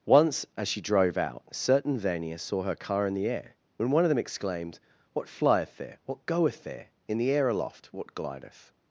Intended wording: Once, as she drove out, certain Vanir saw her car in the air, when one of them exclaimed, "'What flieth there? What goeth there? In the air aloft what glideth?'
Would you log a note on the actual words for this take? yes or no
no